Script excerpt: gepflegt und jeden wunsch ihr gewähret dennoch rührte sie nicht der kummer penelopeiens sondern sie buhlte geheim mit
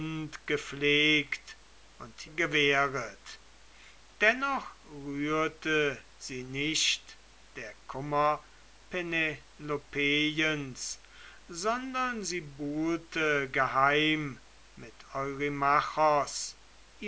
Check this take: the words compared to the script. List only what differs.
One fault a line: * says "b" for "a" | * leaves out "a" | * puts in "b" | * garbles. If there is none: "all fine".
* leaves out "jeden wunsch ihr"